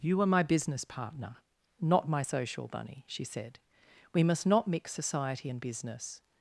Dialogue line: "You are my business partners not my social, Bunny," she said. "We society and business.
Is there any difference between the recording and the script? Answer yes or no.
yes